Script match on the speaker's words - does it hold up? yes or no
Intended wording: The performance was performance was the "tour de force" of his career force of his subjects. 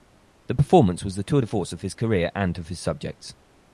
no